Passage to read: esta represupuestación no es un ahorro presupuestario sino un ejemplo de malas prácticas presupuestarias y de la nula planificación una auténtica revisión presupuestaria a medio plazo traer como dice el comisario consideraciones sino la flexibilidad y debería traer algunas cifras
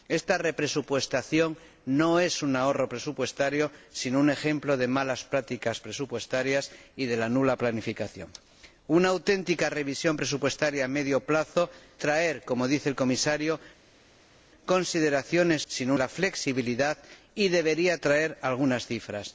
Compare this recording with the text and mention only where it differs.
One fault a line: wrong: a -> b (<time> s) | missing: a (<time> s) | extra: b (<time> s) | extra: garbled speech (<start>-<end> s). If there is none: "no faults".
no faults